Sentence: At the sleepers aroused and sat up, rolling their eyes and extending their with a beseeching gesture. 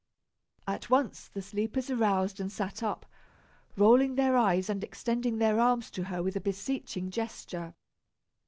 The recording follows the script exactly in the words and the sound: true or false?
false